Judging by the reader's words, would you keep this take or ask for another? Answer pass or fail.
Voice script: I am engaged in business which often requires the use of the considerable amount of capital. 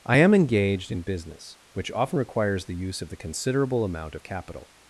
pass